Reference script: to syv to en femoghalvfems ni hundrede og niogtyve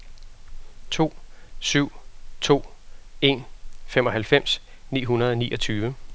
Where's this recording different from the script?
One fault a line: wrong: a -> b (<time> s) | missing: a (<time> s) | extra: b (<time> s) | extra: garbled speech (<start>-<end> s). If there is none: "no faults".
no faults